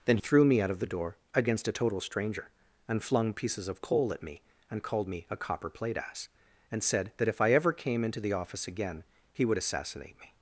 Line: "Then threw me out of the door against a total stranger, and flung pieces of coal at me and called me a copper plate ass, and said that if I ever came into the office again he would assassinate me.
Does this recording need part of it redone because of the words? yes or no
no